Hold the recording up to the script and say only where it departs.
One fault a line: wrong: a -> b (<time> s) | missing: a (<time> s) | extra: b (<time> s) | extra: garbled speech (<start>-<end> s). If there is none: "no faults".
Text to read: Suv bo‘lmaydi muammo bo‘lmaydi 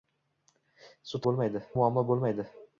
no faults